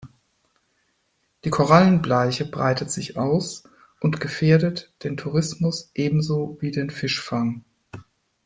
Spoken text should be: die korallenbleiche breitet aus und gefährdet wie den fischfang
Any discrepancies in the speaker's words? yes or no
yes